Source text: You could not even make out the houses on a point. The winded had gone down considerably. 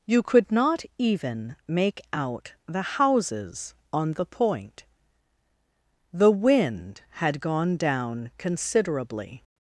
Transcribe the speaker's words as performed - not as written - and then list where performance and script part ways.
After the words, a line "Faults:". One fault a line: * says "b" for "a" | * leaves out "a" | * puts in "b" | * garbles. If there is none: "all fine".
You could not even make out the houses on the point. The wind had gone down considerably.
Faults:
* says "the" for "a"
* says "wind" for "winded"